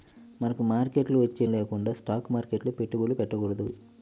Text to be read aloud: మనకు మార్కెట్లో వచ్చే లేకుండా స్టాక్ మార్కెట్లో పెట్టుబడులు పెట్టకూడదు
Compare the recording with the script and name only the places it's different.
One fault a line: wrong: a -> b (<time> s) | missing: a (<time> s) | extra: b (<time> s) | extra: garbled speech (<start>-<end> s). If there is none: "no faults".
no faults